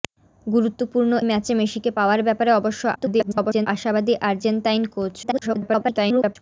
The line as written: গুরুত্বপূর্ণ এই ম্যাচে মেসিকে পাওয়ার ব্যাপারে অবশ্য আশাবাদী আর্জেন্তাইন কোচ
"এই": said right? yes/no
no